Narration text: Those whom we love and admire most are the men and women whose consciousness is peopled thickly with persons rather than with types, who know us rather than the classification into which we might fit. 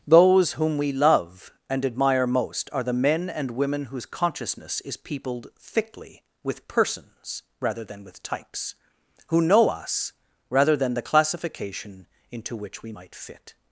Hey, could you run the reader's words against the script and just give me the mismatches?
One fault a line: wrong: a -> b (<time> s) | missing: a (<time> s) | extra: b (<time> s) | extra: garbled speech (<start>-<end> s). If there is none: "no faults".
no faults